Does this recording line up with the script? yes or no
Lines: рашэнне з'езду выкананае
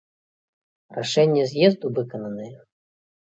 yes